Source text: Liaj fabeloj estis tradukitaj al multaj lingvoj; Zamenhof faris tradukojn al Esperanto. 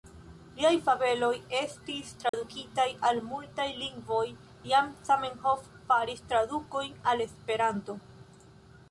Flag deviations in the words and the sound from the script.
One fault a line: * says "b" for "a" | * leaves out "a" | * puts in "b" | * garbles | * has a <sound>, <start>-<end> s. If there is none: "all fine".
* has a dropout, 2.3-2.3 s
* puts in "jam"